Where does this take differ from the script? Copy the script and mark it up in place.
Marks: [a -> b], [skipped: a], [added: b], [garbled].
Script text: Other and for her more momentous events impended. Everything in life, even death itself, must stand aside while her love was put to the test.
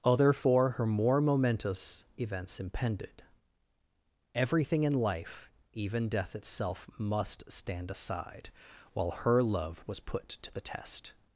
Other [skipped: and] for her more momentous events impended. Everything in life, even death itself, must stand aside while her love was put to the test.